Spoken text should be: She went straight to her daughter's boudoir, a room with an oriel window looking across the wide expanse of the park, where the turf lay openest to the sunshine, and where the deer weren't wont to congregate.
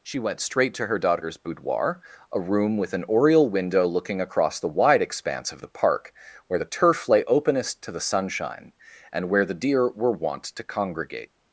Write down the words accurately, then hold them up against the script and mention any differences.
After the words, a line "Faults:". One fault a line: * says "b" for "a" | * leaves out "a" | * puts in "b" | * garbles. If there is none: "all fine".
She went straight to her daughter's boudoir, a room with an oriel window looking across the wide expanse of the park, where the turf lay openest to the sunshine, and where the deer were wont to congregate.
Faults:
* says "were" for "weren't"